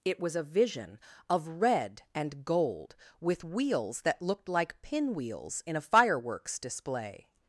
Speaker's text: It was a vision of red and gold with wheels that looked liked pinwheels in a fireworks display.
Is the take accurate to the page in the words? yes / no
no